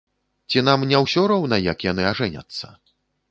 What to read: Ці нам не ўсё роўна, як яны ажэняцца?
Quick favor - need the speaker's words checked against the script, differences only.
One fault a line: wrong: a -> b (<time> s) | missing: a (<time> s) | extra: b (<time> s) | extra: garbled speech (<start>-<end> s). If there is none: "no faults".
no faults